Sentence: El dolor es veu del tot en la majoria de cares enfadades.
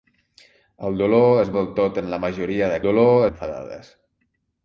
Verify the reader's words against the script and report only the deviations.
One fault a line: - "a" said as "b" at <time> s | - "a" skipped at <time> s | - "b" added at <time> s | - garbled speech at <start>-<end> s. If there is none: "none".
- "veu" skipped at 1.5 s
- "cares" said as "dolor" at 2.9 s